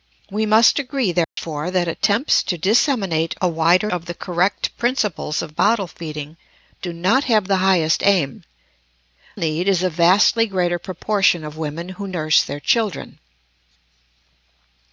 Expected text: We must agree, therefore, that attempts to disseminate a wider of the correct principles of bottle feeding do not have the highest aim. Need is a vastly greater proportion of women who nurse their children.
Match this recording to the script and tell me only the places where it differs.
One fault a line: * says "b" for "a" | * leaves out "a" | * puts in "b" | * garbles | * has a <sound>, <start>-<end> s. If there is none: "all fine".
* has a dropout, 1.2-1.4 s